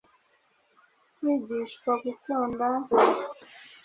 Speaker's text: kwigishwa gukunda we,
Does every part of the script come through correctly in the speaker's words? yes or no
yes